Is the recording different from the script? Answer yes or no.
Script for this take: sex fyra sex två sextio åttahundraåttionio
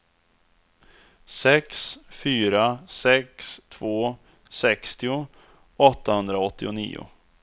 no